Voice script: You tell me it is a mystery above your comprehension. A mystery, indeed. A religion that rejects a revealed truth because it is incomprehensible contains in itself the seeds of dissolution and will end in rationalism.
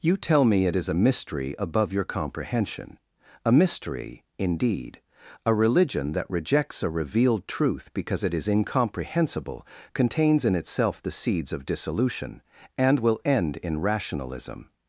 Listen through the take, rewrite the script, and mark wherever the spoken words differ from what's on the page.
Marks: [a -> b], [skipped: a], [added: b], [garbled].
You tell me it is a mystery above your comprehension. A mystery, indeed. A religion that rejects a revealed truth because it is incomprehensible contains in itself the seeds of dissolution and will end in rationalism.